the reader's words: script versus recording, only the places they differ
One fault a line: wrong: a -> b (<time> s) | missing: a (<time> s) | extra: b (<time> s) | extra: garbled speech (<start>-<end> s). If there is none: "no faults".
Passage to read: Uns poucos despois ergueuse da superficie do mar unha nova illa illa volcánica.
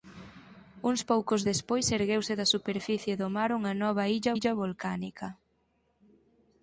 no faults